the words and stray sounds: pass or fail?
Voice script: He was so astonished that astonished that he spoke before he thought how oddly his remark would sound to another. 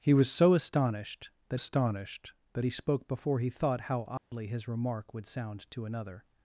fail